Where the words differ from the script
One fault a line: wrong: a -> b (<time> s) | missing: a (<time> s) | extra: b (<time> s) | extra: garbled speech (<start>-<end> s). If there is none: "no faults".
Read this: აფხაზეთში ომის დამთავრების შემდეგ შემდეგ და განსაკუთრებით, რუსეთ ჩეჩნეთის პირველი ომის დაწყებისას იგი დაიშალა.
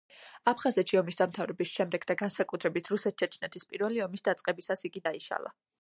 missing: შემდეგ (2.1 s)